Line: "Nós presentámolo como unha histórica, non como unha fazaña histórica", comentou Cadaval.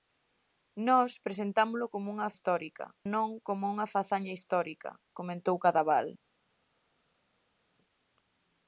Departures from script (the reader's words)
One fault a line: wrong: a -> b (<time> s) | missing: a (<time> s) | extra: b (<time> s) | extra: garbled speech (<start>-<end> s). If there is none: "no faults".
no faults